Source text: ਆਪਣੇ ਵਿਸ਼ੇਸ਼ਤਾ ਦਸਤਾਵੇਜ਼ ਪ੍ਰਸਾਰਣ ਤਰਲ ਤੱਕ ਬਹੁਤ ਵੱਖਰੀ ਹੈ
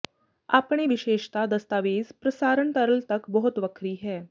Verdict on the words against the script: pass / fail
pass